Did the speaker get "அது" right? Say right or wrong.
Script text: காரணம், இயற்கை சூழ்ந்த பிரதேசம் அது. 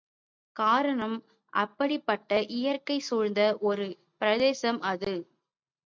right